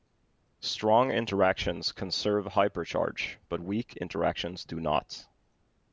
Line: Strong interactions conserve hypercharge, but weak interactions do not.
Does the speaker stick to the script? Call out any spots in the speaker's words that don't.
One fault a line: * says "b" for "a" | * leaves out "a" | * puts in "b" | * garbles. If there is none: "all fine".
all fine